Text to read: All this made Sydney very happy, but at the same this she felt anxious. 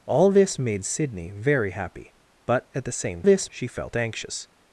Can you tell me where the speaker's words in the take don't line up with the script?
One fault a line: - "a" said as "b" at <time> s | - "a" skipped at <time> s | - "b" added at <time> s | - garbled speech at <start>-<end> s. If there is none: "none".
none